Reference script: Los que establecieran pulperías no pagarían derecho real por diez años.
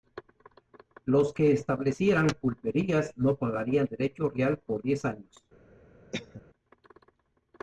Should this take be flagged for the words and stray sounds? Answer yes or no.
yes